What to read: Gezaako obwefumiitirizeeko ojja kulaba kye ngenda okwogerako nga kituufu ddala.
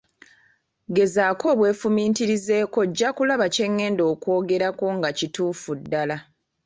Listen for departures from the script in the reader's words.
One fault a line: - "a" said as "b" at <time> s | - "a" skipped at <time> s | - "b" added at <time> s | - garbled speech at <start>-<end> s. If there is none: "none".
none